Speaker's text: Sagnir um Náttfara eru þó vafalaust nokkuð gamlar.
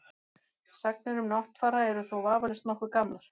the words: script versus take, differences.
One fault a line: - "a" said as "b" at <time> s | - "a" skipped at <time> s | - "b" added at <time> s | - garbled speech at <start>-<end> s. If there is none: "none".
none